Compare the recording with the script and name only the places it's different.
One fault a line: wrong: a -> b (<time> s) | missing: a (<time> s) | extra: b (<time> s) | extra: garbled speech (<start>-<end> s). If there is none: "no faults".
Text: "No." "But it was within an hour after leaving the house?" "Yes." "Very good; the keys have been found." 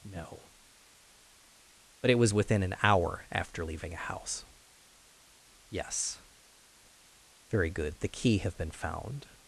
wrong: the -> a (3.9 s)
wrong: keys -> key (8.1 s)